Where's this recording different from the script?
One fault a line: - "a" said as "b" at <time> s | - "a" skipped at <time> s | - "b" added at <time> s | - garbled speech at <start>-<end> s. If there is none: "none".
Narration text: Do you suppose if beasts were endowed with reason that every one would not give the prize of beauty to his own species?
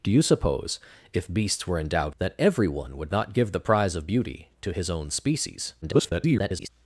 - "with reason" skipped at 2.1 s
- garbled speech at 5.8-6.7 s